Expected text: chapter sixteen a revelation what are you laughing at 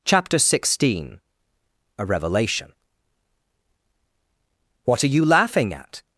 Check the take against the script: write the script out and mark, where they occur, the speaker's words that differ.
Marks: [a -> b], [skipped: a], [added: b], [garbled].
chapter sixteen a revelation what are you laughing at